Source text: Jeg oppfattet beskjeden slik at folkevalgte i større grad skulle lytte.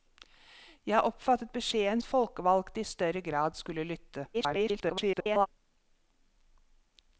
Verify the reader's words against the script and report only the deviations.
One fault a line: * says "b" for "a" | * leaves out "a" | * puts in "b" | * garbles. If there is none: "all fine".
* leaves out "slik"
* garbles